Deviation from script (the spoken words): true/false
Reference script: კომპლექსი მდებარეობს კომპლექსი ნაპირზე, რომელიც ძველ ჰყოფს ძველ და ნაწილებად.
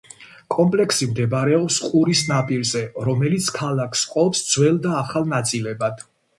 true